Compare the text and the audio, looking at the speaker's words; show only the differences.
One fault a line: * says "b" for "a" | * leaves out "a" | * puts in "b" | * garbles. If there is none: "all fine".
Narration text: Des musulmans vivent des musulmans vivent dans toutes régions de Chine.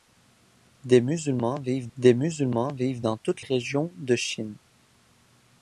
all fine